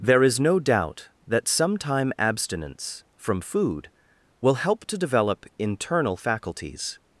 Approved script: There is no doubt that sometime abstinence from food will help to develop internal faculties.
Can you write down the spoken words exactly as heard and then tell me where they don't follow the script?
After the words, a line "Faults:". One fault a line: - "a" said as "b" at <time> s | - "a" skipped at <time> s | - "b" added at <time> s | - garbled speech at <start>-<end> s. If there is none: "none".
There is no doubt that sometime abstinence from food will help to develop internal faculties.
Faults:
none